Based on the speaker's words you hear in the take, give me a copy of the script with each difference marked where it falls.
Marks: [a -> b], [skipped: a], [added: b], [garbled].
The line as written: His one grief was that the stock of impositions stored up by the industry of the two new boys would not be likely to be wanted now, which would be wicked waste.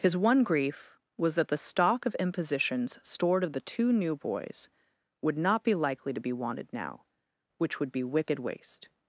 His one grief was that the stock of impositions stored [skipped: up by the industry] of the two new boys would not be likely to be wanted now, which would be wicked waste.